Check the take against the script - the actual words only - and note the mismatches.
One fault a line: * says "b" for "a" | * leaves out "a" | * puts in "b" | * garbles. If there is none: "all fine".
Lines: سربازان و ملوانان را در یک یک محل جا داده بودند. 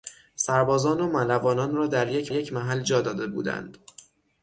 all fine